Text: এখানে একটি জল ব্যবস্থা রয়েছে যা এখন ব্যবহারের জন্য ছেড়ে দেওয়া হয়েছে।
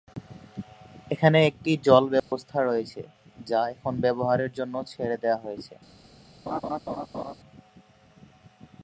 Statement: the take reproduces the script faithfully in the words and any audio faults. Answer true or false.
false